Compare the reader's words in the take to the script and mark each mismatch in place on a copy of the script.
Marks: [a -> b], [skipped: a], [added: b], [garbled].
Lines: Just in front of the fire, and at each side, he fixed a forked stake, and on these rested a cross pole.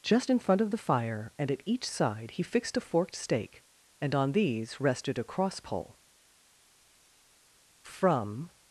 Just in front of the fire, and at each side, he fixed a forked stake, and on these rested a cross pole. [added: From]